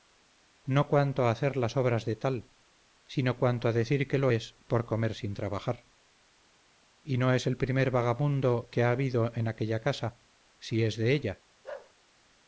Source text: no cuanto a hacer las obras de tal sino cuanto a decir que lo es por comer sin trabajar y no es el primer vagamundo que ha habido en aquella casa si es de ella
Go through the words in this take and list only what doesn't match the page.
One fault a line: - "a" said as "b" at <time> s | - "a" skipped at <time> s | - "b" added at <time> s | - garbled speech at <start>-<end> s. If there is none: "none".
none